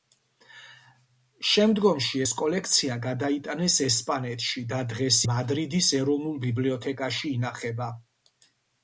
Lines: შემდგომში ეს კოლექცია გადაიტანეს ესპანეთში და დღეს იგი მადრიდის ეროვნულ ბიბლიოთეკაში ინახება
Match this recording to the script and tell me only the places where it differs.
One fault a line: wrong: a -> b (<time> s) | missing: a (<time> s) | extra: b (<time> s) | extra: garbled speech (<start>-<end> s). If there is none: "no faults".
missing: იგი (5.2 s)